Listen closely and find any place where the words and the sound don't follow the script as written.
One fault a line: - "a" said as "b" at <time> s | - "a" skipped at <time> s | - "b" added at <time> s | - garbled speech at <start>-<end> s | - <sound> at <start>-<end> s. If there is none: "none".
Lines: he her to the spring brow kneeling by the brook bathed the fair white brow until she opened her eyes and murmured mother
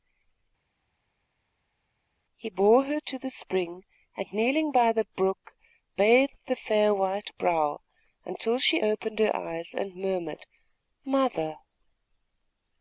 - "bore" added at 2.5 s
- "brow" said as "and" at 4.1 s